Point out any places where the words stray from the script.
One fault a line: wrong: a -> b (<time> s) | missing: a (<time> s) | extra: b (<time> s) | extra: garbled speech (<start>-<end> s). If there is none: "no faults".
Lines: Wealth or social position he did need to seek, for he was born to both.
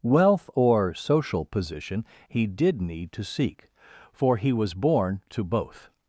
no faults